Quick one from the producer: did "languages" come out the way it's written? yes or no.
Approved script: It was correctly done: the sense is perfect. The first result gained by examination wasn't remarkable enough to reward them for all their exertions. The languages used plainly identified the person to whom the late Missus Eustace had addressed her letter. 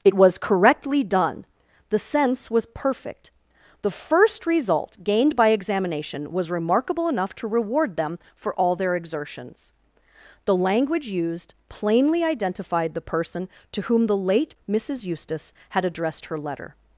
no